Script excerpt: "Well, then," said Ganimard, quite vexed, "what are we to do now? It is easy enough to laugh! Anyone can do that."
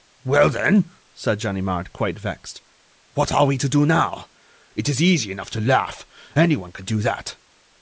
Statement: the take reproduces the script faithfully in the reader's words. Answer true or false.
true